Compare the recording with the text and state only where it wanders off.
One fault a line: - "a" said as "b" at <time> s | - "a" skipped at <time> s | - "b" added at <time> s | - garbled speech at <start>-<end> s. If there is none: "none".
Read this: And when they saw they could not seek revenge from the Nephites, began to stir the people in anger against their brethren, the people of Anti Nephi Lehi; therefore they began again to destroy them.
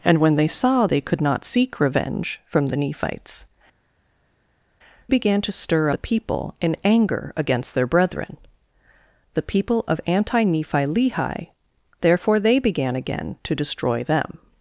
none